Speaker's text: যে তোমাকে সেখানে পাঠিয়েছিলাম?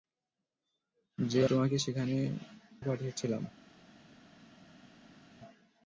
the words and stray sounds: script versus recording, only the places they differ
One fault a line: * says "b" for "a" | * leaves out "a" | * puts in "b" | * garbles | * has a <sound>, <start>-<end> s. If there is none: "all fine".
all fine